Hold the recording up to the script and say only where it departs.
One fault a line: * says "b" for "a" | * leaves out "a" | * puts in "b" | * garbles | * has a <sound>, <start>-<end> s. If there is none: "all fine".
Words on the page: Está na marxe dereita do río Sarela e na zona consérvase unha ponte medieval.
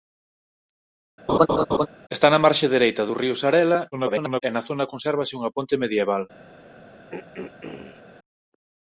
* has a laugh, 1.3-1.9 s
* garbles
* has a throat clearing, 7.1-8.0 s